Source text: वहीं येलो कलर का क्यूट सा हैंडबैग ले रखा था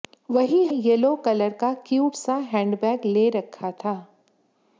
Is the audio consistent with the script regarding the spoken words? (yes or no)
yes